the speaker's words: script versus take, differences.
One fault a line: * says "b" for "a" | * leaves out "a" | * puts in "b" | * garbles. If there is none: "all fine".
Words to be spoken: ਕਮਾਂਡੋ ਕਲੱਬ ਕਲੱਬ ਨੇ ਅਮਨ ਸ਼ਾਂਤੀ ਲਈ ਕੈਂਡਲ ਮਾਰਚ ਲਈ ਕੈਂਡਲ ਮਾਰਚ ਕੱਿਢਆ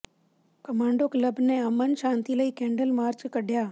* leaves out "ਕਲੱਬ"
* leaves out "ਲਈ ਕੈਂਡਲ ਮਾਰਚ"